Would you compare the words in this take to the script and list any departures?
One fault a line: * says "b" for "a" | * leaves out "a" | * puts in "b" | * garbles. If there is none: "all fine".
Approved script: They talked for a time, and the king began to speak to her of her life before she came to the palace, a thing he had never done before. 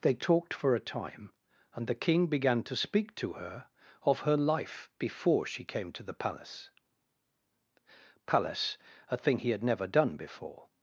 * puts in "palace"